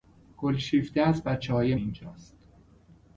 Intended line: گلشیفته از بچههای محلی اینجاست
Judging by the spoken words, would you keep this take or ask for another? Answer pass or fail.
fail